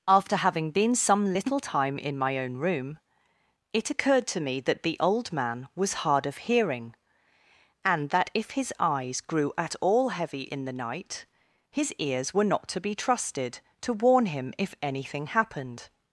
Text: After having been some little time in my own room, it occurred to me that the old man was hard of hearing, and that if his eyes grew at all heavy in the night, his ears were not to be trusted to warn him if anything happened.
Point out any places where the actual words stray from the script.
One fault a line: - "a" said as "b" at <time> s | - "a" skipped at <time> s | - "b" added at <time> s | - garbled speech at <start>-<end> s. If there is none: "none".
none